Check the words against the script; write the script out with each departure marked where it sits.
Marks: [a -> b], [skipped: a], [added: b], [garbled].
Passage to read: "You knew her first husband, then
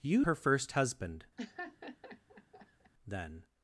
"You [skipped: knew] her first husband, then